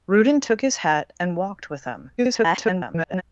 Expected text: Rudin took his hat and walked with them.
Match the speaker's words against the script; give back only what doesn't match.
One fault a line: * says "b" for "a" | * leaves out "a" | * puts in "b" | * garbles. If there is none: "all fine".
* garbles